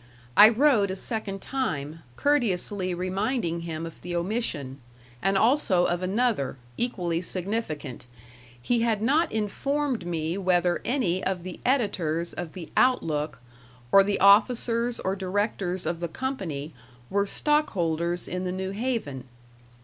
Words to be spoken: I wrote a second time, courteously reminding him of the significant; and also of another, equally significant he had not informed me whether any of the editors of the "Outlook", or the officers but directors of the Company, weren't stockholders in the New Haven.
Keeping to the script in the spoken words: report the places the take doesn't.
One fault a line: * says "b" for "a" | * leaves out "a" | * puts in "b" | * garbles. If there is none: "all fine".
* says "omission" for "significant"
* says "or" for "but"
* says "were" for "weren't"